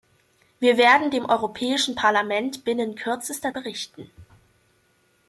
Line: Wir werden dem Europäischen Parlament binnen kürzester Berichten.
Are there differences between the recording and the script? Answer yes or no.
no